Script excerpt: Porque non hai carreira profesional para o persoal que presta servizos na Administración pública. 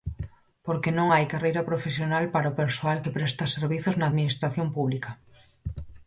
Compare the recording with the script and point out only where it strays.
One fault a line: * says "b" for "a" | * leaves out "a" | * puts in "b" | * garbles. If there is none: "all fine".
all fine